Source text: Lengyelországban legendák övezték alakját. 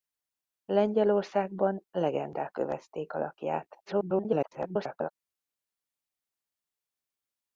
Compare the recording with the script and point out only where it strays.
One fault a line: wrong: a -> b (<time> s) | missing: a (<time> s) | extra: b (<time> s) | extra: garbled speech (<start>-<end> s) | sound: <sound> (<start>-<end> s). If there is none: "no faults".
extra: garbled speech (3.9-5.1 s)